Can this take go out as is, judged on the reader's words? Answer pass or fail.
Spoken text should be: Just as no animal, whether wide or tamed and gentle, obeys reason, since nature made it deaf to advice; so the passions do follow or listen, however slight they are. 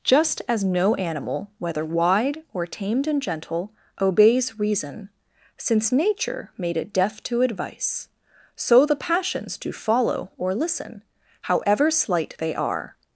pass